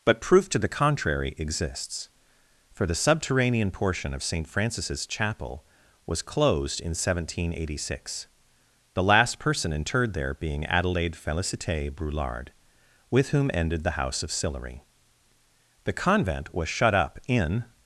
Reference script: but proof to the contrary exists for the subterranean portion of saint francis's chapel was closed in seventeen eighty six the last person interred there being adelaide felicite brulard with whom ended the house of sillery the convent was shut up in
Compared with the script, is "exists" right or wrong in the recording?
right